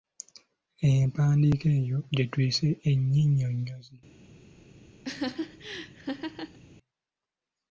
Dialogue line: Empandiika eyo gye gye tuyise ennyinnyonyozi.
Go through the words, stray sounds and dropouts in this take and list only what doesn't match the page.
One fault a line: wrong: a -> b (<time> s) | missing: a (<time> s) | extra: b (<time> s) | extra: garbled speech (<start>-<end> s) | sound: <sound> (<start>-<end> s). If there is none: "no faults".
missing: gye (2.2 s)
sound: laugh (5.0-6.6 s)